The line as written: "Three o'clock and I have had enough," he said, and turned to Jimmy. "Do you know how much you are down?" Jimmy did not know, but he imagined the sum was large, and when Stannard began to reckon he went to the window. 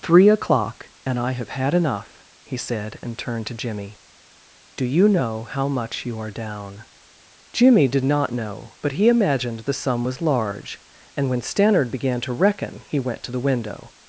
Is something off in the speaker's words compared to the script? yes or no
no